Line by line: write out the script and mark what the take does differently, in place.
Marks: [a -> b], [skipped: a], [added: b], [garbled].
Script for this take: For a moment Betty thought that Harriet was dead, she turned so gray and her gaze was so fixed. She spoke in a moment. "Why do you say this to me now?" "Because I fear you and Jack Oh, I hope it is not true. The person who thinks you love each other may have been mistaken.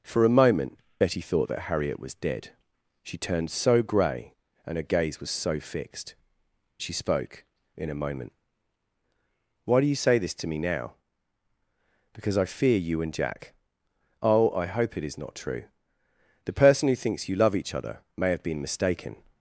For a moment Betty thought that Harriet was dead, she turned so gray and her gaze was so fixed. She spoke in a moment. "Why do you say this to me now?" "Because I fear you and Jack Oh, I hope it is not true. The person who thinks you love each other may have been mistaken.